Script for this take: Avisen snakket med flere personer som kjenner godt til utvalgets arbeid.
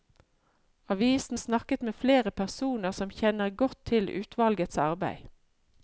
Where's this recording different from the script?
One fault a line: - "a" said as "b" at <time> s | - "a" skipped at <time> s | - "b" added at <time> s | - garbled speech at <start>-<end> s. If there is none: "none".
none